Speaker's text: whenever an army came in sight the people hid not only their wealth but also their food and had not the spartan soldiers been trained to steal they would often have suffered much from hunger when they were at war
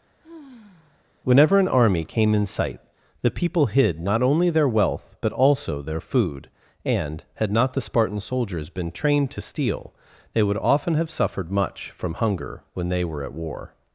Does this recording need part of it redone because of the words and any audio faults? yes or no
yes